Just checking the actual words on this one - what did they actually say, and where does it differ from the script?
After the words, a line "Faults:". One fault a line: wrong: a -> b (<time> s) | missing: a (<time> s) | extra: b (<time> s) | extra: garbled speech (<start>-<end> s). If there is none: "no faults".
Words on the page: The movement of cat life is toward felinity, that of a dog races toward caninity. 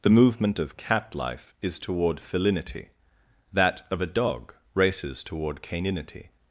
The movement of cat life is toward felinity, that of a dog races toward caninity.
Faults:
no faults